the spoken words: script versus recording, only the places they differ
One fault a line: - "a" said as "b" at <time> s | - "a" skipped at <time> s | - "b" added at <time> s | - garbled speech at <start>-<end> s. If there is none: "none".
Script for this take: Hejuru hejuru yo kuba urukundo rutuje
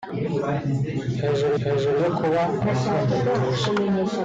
none